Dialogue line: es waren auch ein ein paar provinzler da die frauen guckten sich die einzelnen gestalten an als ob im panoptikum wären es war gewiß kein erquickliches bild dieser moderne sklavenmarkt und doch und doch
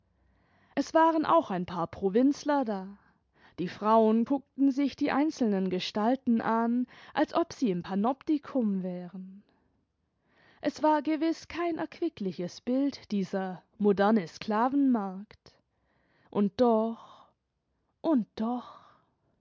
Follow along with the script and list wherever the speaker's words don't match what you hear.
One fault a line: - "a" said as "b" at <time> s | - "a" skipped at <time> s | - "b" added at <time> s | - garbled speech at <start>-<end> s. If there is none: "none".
- "ein" skipped at 1.7 s
- "sie" added at 7.5 s